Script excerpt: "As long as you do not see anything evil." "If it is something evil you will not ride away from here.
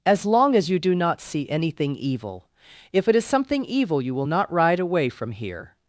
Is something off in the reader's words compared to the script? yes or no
no